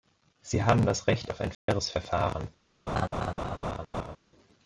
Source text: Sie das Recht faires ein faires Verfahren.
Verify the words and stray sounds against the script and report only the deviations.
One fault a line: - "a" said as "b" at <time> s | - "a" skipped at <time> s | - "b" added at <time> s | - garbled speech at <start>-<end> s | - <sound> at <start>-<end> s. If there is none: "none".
- "haben" added at 0.6 s
- "faires" said as "auf" at 1.3 s
- dropout at 1.5-1.7 s
- laugh at 2.9-4.2 s